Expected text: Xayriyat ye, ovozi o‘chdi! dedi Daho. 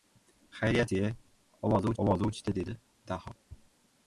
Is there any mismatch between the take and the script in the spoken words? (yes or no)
yes